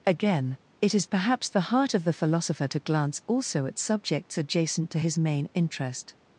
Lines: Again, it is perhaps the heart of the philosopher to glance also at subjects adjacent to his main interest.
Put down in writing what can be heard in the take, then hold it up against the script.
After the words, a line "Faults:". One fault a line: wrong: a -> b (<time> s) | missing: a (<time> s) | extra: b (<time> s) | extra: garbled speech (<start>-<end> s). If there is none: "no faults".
Again, it is perhaps the heart of the philosopher to glance also at subjects adjacent to his main interest.
Faults:
no faults